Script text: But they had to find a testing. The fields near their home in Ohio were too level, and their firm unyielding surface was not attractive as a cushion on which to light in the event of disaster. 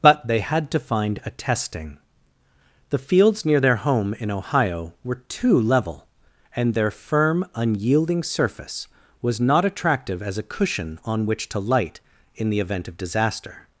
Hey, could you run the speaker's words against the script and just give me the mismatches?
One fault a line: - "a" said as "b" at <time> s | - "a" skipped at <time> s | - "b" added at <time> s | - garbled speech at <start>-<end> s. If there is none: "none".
none